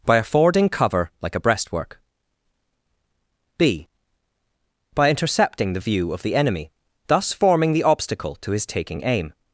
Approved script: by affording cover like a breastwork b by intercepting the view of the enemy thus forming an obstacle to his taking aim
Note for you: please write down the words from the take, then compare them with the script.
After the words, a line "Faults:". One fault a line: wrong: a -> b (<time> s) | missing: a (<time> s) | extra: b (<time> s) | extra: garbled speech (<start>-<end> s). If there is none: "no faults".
by affording cover like a breastwork b by intercepting the view of the enemy thus forming the obstacle to his taking aim
Faults:
wrong: an -> the (7.7 s)